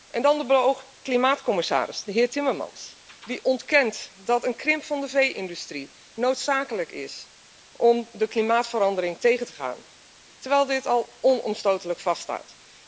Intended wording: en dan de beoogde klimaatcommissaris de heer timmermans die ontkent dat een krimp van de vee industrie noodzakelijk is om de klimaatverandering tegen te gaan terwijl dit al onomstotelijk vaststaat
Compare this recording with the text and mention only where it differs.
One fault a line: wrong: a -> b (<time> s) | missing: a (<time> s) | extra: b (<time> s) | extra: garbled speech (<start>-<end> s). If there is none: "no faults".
no faults